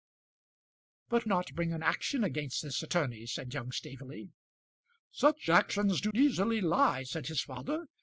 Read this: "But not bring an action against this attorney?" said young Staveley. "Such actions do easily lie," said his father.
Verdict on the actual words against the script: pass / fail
pass